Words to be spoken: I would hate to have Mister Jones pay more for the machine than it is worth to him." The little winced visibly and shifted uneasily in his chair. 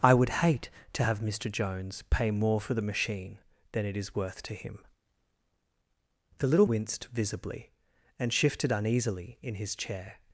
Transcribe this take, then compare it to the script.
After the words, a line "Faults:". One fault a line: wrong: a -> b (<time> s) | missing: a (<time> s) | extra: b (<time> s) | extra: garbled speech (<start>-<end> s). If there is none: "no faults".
I would hate to have Mister Jones pay more for the machine than it is worth to him." The little winced visibly and shifted uneasily in his chair.
Faults:
no faults